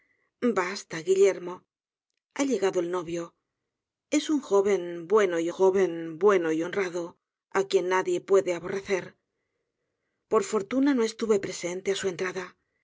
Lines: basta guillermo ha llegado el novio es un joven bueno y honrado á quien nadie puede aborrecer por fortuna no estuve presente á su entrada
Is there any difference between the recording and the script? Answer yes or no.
yes